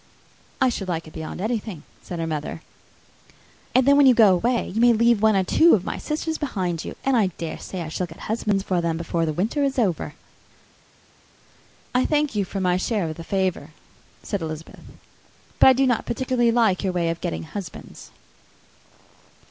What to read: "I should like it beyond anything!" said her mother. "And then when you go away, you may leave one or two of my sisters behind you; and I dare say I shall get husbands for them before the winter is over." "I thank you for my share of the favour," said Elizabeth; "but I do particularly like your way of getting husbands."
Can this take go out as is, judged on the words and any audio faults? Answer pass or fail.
fail